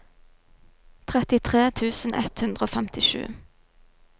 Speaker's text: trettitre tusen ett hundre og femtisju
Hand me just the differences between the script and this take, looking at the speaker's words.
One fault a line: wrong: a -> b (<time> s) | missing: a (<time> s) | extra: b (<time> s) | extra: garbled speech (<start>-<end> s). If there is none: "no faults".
no faults